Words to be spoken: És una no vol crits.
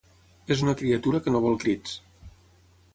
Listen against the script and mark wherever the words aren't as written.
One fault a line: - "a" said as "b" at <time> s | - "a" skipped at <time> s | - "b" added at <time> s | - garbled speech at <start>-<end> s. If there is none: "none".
- "criatura que" added at 0.8 s